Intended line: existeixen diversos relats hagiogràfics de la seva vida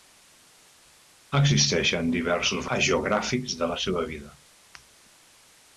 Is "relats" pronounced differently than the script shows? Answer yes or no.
yes